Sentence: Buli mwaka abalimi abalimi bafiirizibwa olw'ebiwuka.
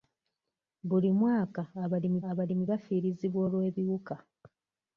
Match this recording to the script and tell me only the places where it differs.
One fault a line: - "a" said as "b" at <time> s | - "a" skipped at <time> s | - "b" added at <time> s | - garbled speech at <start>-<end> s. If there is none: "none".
none